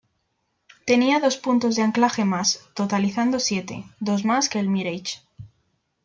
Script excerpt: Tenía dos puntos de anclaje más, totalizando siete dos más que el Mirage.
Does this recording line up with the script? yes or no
yes